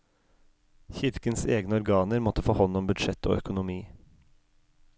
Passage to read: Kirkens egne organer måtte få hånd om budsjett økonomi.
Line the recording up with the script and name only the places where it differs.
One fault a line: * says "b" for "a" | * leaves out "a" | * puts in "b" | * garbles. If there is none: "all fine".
* puts in "og"